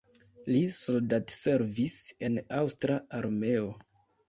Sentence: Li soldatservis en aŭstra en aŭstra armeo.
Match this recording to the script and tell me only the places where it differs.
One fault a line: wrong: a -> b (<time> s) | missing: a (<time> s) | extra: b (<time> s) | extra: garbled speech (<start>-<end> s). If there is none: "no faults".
missing: en aŭstra (3.0 s)